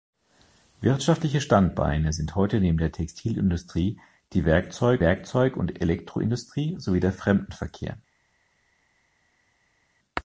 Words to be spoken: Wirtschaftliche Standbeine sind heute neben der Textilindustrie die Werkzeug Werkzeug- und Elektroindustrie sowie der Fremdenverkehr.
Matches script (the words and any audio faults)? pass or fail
pass